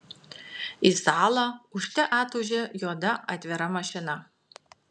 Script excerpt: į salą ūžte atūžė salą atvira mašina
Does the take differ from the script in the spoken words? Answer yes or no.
yes